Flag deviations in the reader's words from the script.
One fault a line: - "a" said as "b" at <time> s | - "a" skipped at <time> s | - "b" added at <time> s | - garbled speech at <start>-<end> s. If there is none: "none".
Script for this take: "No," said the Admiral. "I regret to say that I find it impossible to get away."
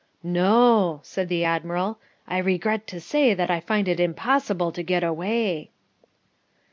none